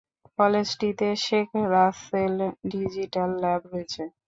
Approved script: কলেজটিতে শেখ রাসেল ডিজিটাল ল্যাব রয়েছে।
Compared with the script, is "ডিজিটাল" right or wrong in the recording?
right